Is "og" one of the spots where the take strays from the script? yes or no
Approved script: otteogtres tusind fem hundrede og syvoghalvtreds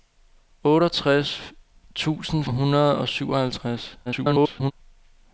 no